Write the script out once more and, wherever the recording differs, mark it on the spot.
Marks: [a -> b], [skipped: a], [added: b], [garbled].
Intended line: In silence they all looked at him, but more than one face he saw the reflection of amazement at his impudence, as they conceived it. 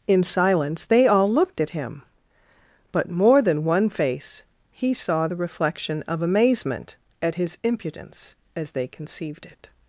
In silence they all looked at him, but more than one face he saw the reflection of amazement at his impudence, as they conceived it.